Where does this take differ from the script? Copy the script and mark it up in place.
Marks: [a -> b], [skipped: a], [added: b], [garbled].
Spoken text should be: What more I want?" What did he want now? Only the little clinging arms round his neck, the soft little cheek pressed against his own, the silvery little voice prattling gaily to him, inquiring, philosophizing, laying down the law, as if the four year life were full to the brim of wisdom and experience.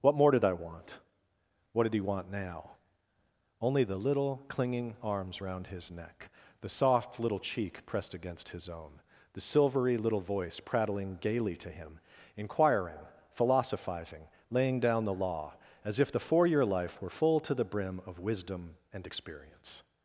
What more [added: did] I want?" What did he want now? Only the little clinging arms round his neck, the soft little cheek pressed against his own, the silvery little voice prattling gaily to him, inquiring, philosophizing, laying down the law, as if the four year life were full to the brim of wisdom and experience.